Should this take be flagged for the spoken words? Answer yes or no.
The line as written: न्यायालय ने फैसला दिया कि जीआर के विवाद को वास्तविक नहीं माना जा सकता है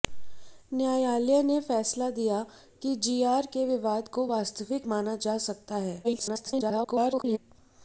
yes